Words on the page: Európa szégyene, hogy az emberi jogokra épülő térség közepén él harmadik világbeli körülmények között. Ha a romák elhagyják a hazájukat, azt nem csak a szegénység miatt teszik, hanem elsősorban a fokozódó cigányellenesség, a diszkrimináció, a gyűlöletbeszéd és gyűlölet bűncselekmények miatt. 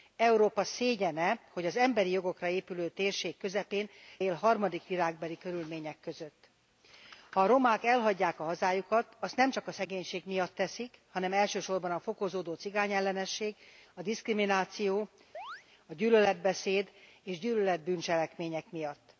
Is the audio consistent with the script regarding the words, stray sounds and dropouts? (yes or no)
no